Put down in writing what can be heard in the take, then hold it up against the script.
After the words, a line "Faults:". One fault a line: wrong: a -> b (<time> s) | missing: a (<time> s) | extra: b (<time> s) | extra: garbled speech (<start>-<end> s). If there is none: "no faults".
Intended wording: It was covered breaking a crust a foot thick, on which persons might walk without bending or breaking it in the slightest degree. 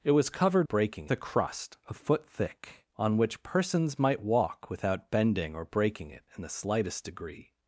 It was covered breaking a crust a foot thick, on which persons might walk without bending or breaking it in the slightest degree.
Faults:
no faults